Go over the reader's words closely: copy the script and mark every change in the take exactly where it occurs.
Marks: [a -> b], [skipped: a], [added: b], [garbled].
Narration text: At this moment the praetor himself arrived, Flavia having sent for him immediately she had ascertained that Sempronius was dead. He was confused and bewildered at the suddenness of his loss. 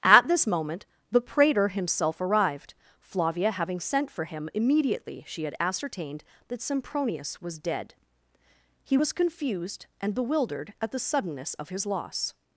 At this moment the praetor himself arrived, Flavia having sent for him immediately she had ascertained that Sempronius was dead. He was confused and bewildered at the suddenness of his loss.